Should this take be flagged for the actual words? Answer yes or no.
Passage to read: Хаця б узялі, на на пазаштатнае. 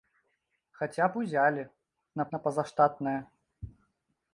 no